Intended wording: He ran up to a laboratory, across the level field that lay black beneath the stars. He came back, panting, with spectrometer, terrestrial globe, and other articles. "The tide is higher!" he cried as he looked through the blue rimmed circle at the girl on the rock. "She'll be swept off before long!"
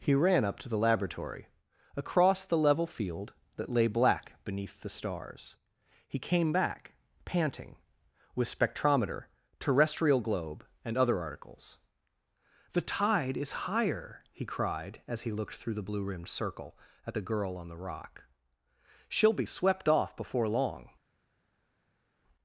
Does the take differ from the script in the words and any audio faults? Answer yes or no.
yes